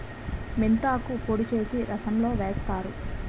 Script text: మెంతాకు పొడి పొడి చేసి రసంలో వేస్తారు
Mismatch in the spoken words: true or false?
true